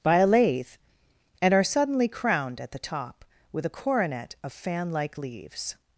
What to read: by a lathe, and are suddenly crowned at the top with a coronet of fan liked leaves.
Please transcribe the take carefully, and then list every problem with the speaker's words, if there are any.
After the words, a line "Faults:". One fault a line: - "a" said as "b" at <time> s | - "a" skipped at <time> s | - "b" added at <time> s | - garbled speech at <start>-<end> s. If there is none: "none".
by a lathe, and are suddenly crowned at the top with a coronet of fan like leaves.
Faults:
- "liked" said as "like" at 4.9 s